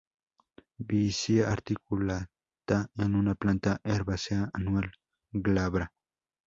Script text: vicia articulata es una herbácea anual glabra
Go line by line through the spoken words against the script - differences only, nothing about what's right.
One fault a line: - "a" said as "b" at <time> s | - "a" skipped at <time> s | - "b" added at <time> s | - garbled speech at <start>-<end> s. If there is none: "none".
- "planta" added at 3.3 s